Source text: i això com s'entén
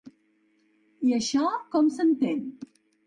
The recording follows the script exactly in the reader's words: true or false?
true